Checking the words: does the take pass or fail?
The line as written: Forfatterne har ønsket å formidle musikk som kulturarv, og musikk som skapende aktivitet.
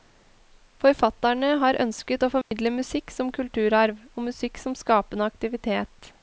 pass